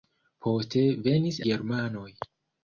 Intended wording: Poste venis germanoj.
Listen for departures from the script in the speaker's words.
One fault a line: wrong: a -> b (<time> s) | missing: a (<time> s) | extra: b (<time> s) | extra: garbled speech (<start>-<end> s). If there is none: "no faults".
no faults